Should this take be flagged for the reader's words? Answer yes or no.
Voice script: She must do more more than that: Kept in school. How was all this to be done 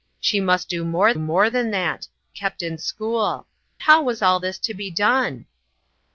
no